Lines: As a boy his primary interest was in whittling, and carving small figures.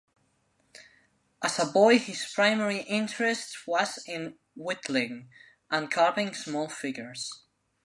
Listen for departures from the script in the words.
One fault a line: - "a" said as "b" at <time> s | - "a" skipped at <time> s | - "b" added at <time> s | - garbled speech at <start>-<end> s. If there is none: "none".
none